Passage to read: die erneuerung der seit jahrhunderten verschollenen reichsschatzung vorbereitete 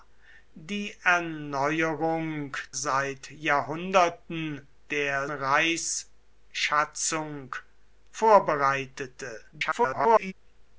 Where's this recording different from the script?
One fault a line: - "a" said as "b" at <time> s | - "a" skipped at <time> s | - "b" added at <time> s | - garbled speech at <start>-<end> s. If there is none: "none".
- "der" skipped at 2.6 s
- "verschollenen" said as "der" at 4.9 s
- garbled speech at 9.5-10.3 s